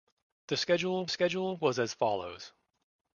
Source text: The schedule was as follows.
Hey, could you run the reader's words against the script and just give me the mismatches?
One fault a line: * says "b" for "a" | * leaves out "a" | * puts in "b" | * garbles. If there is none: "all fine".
* puts in "schedule"